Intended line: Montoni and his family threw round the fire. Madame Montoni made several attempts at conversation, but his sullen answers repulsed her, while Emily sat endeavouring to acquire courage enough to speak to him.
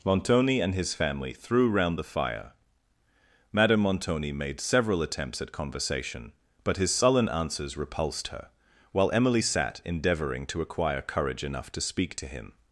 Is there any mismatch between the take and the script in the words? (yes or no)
no